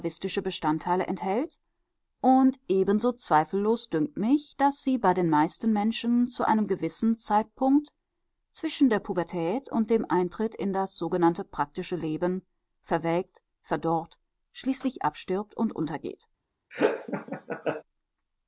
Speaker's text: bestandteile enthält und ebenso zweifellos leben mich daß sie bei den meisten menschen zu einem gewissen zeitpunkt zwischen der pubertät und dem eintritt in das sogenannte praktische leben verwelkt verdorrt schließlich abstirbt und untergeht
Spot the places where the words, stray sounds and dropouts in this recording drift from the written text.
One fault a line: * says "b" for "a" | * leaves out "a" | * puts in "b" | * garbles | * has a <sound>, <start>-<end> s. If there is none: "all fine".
* says "dünkt" for "leben"
* has a laugh, 16.7-17.8 s